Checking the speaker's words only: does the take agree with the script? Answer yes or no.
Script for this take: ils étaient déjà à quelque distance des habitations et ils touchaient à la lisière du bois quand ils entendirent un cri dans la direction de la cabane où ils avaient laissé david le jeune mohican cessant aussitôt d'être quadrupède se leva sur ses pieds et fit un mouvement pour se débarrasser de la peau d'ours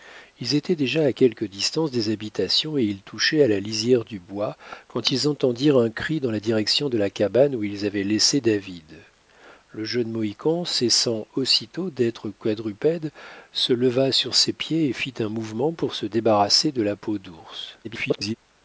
no